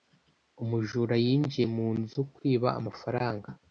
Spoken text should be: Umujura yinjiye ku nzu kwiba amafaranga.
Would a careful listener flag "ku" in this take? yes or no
yes